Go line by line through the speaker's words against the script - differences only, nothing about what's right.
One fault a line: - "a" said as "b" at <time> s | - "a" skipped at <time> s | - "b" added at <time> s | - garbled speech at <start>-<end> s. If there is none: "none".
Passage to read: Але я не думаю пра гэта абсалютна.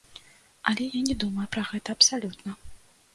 none